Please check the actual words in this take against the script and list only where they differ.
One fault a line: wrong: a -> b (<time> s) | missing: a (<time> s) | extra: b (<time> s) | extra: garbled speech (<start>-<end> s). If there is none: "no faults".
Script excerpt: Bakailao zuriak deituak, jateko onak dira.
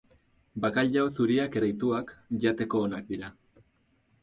no faults